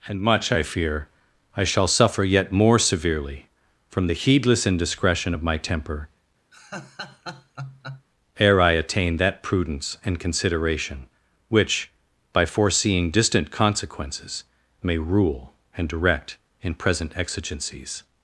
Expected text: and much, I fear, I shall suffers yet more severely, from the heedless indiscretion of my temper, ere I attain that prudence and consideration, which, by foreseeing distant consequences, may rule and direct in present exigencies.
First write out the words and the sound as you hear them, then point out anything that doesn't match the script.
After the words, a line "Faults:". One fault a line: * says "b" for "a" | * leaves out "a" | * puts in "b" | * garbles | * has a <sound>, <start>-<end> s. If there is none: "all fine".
and much, I fear, I shall suffer yet more severely, from the heedless indiscretion of my temper, ere I attain that prudence and consideration, which, by foreseeing distant consequences, may rule and direct in present exigencies.
Faults:
* says "suffer" for "suffers"
* has a laugh, 6.5-8.1 s